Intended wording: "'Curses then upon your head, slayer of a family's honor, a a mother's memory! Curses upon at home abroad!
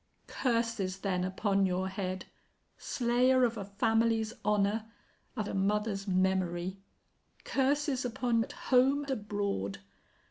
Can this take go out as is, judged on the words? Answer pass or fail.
pass